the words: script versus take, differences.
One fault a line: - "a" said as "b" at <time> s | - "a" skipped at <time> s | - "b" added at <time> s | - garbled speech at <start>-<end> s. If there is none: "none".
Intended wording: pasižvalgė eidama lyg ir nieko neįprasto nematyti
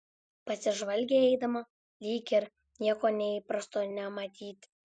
none